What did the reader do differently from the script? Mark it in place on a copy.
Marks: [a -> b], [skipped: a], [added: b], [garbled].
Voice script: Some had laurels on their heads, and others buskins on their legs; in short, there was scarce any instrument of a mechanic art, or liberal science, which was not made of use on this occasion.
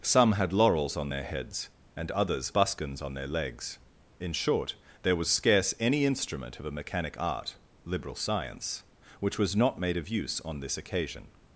Some had laurels on their heads, and others buskins on their legs; in short, there was scarce any instrument of a mechanic art, [skipped: or] liberal science, which was not made of use on this occasion.